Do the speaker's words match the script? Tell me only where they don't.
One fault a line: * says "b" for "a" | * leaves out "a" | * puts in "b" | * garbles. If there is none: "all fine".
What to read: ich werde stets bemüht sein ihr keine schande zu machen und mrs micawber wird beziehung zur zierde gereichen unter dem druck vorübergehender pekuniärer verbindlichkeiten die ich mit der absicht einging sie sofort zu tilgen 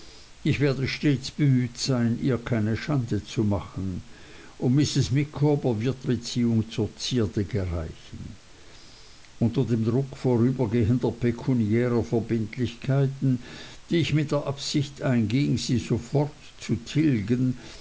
all fine